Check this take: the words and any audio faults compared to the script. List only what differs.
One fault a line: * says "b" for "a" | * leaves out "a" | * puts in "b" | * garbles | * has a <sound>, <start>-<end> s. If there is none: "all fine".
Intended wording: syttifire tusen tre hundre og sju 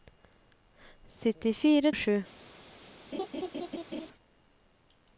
* leaves out "tusen tre hundre"
* has a laugh, 3.1-4.1 s